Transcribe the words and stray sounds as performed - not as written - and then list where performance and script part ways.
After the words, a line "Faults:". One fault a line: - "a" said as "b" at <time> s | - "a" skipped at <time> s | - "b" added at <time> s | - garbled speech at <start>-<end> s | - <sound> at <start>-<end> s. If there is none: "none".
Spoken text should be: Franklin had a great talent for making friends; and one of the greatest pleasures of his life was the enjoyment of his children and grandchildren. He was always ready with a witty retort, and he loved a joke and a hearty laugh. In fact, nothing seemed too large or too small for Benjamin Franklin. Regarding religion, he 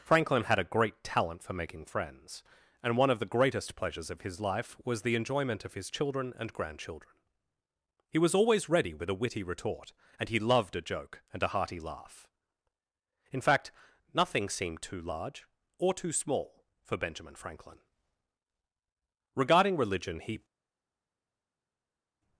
Franklin had a great talent for making friends; and one of the greatest pleasures of his life was the enjoyment of his children and grandchildren. He was always ready with a witty retort, and he loved a joke and a hearty laugh. In fact, nothing seemed too large or too small for Benjamin Franklin. Regarding religion, he
Faults:
none